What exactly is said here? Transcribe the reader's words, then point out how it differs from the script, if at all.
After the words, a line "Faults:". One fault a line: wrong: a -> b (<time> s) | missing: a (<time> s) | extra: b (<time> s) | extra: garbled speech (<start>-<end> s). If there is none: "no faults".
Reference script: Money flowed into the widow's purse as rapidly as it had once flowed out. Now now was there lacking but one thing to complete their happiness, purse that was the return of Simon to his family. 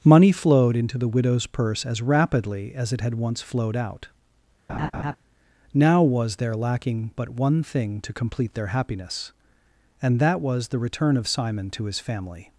Money flowed into the widow's purse as rapidly as it had once flowed out. Now was there lacking but one thing to complete their happiness, and that was the return of Simon to his family.
Faults:
missing: now (6.0 s)
wrong: purse -> and (10.0 s)